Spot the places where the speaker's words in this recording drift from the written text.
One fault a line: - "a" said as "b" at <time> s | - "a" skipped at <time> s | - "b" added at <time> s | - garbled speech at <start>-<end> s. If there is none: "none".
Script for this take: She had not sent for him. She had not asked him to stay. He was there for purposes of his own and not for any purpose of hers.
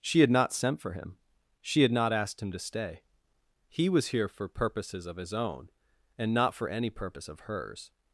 - "there" said as "here" at 4.1 s